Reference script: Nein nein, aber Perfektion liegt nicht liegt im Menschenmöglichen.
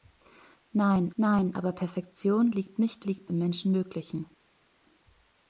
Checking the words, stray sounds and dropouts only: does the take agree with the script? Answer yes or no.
yes